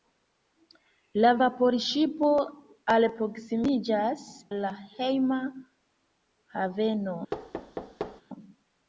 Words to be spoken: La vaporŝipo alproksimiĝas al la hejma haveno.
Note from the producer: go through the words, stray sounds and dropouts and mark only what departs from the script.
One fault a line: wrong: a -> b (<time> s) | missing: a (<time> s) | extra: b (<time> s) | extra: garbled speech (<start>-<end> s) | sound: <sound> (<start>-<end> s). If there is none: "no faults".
missing: al (4.2 s)
sound: thud (7.3-8.2 s)